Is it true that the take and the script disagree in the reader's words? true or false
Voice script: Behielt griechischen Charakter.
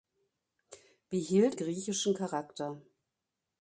false